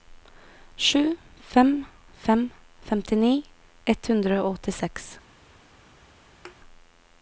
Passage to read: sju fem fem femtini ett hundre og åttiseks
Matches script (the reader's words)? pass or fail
pass